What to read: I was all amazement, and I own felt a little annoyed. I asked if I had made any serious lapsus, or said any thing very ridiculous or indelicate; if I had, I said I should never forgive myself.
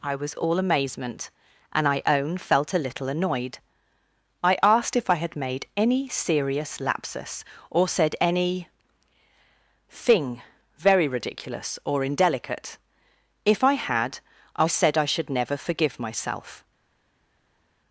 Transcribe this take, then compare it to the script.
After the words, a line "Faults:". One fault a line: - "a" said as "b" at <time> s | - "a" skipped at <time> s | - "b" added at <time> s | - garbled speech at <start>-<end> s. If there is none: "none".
I was all amazement, and I own felt a little annoyed. I asked if I had made any serious lapsus, or said any thing very ridiculous or indelicate; if I had, I said I should never forgive myself.
Faults:
none